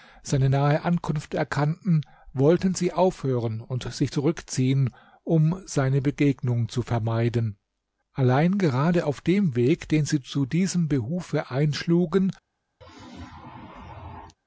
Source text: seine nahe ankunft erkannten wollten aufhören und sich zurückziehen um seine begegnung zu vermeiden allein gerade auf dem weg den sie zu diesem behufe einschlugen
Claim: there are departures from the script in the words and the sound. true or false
true